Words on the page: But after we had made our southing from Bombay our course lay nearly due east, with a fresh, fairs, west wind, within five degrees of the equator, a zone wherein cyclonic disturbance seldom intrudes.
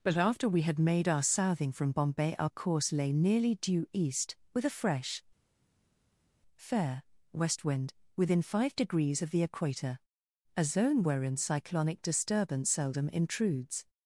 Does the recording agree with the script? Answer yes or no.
no